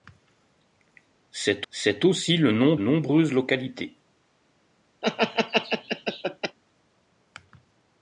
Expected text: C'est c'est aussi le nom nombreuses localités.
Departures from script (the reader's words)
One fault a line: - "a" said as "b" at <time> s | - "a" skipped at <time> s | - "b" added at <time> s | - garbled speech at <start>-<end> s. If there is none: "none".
none